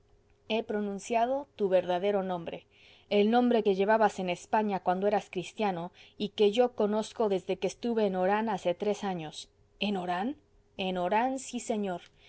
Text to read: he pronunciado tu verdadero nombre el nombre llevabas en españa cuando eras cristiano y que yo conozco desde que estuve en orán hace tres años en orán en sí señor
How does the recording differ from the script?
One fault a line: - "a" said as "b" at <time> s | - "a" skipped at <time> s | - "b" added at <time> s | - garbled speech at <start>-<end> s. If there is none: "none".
- "que" added at 3.6 s
- "orán" added at 11.0 s